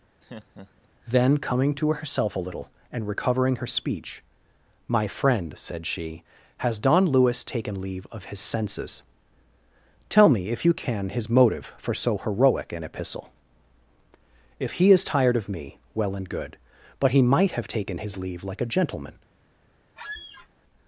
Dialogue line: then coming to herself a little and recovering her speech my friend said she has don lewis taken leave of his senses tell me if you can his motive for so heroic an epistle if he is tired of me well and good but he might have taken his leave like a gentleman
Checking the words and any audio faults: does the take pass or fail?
fail